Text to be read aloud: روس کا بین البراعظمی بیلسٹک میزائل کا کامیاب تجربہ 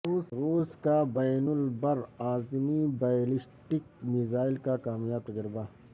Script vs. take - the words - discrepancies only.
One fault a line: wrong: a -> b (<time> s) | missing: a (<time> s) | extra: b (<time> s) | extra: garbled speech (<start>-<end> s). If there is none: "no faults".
no faults